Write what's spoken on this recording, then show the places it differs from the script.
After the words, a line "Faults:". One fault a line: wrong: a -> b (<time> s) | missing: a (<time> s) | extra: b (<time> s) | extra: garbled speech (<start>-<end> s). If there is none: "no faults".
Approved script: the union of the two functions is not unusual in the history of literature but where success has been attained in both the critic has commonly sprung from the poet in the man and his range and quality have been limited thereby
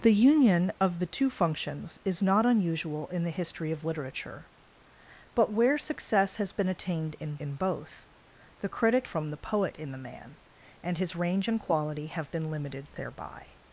the union of the two functions is not unusual in the history of literature but where success has been attained in in both the critic from the poet in the man and his range and quality have been limited thereby
Faults:
extra: in (7.4 s)
missing: has commonly sprung (9.1 s)